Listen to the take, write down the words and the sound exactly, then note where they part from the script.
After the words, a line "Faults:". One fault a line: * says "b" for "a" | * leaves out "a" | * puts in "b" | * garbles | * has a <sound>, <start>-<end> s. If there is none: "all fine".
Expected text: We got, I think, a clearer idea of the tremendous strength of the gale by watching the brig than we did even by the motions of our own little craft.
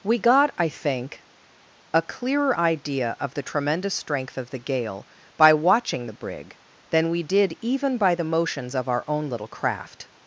We got, I think, a clearer idea of the tremendous strength of the gale by watching the brig than we did even by the motions of our own little craft.
Faults:
all fine